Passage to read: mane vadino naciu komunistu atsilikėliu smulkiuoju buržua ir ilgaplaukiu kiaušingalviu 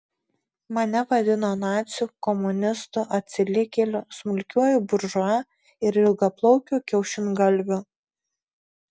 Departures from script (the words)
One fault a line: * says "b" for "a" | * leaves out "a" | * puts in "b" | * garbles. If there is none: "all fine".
all fine